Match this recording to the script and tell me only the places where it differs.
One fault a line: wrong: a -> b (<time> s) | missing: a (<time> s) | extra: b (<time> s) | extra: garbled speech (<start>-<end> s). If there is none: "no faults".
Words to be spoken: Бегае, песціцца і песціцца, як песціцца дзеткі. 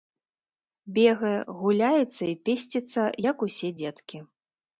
wrong: песціцца -> гуляецца (1.6 s)
wrong: песціцца -> усе (3.5 s)